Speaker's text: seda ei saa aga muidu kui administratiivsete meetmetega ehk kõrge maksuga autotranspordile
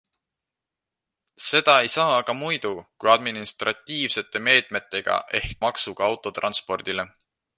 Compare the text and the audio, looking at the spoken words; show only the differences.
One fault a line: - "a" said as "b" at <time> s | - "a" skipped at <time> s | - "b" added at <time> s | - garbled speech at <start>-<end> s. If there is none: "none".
- "kõrge" skipped at 5.6 s